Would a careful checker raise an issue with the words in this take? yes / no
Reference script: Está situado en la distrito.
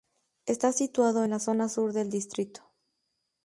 yes